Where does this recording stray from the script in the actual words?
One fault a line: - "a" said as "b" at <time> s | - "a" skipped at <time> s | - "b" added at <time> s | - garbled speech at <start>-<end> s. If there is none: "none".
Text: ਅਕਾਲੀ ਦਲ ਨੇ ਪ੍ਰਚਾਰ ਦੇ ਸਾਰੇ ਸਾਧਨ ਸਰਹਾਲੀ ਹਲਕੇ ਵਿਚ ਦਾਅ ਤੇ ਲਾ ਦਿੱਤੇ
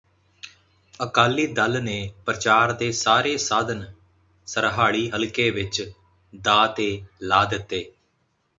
none